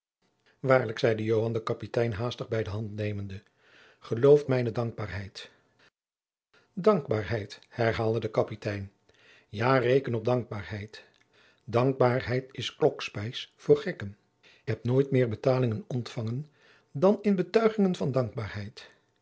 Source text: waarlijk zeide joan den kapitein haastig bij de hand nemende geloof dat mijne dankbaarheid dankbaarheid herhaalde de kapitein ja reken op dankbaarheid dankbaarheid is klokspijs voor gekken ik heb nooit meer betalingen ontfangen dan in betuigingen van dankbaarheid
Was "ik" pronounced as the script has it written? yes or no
no